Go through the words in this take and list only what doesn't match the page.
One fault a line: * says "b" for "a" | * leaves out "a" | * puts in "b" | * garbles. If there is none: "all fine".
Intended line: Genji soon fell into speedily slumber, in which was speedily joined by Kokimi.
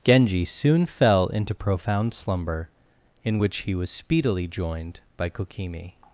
* says "profound" for "speedily"
* puts in "he"